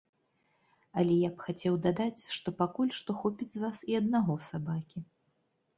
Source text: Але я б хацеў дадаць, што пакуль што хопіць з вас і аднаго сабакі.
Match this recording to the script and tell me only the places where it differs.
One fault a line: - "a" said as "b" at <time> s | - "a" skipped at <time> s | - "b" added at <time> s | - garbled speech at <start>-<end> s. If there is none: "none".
none